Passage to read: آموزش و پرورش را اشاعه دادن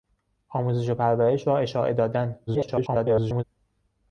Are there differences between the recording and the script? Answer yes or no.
yes